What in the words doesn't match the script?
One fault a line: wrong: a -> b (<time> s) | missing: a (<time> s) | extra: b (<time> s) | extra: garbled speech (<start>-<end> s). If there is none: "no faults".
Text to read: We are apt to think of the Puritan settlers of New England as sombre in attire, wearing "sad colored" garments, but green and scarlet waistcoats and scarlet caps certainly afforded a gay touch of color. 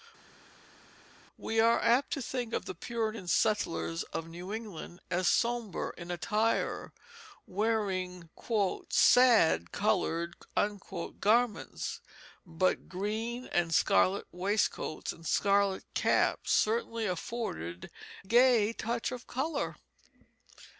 missing: a (17.9 s)